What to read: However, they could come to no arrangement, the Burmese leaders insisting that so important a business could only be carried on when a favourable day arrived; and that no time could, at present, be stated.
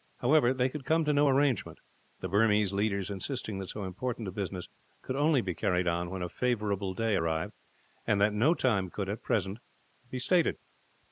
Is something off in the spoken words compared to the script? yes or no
no